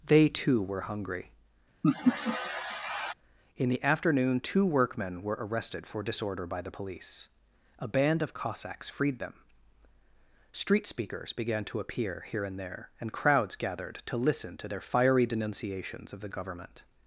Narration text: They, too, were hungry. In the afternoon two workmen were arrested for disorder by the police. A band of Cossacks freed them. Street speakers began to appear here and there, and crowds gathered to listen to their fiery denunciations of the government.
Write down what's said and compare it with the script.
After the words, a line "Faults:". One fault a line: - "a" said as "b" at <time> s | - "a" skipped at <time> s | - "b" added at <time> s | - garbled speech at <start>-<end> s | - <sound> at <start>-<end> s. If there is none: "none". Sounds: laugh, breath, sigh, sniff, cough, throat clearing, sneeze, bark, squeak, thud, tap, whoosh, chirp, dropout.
They, too, were hungry. In the afternoon two workmen were arrested for disorder by the police. A band of Cossacks freed them. Street speakers began to appear here and there, and crowds gathered to listen to their fiery denunciations of the government.
Faults:
- laugh at 1.8-3.1 s